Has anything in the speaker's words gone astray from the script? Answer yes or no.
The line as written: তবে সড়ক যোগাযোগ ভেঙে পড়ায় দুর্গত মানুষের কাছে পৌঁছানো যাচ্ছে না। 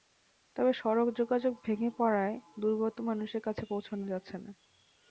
no